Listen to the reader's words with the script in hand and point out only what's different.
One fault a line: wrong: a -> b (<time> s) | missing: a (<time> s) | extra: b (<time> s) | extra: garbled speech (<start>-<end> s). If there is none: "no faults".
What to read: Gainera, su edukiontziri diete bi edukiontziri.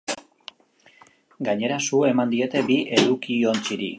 wrong: edukiontziri -> eman (2.0 s)